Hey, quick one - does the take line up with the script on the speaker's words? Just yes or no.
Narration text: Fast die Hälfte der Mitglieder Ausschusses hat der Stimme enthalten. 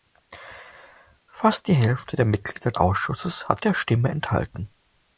yes